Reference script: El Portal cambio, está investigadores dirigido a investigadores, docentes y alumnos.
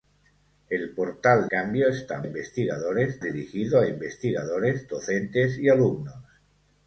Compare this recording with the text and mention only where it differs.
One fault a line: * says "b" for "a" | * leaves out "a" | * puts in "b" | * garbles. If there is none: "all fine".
all fine